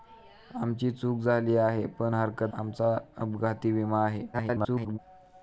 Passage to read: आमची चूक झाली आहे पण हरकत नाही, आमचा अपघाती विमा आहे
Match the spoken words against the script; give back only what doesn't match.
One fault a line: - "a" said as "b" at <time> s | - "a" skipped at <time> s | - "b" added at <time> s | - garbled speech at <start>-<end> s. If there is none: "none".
- "नाही" skipped at 2.5 s
- garbled speech at 4.3-5.0 s